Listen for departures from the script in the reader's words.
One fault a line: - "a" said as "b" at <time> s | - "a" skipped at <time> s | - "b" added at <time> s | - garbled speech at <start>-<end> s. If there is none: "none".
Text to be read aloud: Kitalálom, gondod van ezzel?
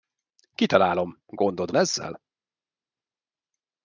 - "van" skipped at 1.7 s